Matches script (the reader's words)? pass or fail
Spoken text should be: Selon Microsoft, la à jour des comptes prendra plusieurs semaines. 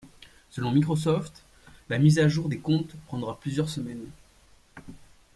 fail